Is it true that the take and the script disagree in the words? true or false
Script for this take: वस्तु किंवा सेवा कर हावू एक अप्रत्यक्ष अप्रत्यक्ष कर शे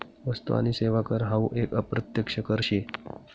true